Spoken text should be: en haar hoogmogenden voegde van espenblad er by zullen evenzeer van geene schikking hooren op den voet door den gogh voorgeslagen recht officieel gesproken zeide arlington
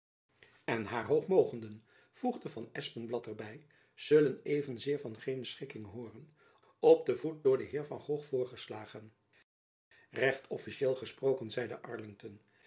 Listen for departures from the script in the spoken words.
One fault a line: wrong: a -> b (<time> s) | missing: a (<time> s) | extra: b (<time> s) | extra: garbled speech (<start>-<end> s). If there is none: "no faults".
extra: heer van (7.7 s)